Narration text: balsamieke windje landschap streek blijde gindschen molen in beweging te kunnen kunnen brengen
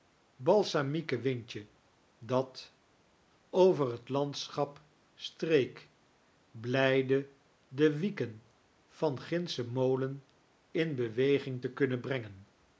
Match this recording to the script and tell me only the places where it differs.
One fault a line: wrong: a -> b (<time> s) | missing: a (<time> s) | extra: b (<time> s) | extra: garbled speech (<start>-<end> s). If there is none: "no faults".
extra: dat over het (2.2 s)
extra: de wieken van (7.7 s)
missing: kunnen (12.0 s)